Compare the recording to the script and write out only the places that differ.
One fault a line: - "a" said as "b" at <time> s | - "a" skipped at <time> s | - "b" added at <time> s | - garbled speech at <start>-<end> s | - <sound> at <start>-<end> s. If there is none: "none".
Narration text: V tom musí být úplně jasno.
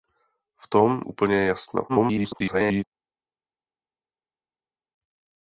- "musí být" skipped at 1.0 s
- garbled speech at 1.9-2.8 s